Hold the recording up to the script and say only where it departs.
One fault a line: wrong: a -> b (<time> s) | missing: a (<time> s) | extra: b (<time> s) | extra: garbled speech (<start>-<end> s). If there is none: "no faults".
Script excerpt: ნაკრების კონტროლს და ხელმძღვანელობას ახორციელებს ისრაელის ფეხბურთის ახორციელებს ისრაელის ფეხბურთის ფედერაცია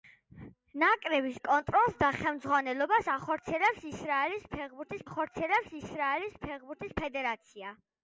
no faults